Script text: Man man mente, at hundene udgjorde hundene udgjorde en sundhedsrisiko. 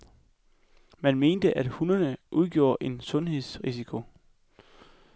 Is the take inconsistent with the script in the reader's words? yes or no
yes